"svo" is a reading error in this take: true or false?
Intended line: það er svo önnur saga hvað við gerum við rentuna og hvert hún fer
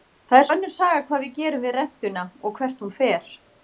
true